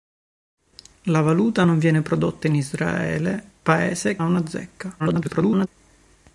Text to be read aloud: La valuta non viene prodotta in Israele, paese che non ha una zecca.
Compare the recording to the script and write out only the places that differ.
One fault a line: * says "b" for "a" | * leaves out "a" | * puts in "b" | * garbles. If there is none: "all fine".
* leaves out "che non"
* garbles